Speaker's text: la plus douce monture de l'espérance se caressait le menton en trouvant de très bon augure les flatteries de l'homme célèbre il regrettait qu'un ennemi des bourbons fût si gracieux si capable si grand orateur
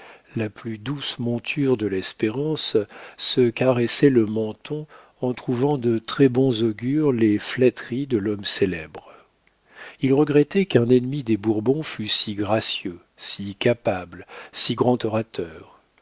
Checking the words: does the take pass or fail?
pass